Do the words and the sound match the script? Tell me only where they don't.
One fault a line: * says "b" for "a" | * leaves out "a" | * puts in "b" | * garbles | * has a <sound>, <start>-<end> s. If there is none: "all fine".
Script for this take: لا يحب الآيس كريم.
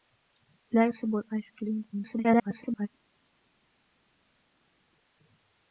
* garbles